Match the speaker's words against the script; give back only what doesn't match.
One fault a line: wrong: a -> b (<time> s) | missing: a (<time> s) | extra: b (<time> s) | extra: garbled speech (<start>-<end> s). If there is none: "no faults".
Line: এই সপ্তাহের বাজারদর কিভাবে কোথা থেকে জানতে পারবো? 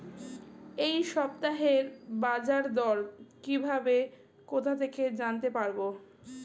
no faults